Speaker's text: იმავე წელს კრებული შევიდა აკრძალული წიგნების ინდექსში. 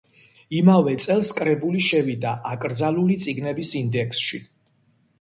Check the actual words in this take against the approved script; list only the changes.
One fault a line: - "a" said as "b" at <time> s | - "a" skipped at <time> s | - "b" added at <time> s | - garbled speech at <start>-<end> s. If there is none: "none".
none